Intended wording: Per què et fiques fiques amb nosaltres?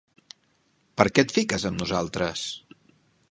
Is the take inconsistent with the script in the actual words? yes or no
yes